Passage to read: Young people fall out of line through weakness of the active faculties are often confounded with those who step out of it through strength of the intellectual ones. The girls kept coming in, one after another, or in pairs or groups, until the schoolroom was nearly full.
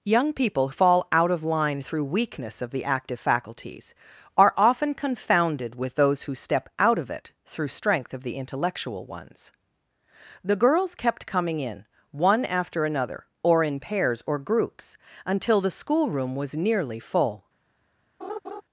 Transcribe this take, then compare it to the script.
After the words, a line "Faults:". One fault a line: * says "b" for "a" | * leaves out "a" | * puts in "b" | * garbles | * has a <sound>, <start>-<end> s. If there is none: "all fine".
Young people fall out of line through weakness of the active faculties are often confounded with those who step out of it through strength of the intellectual ones. The girls kept coming in, one after another, or in pairs or groups, until the schoolroom was nearly full.
Faults:
* has a laugh, 18.2-18.6 s